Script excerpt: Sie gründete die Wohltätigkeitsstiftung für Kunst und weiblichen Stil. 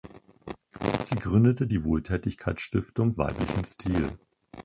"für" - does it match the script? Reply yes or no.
no